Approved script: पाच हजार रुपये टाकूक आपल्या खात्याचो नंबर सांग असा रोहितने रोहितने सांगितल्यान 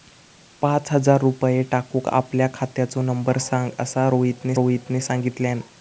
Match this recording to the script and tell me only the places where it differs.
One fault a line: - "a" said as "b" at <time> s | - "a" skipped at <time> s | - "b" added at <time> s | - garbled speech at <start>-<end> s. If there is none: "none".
none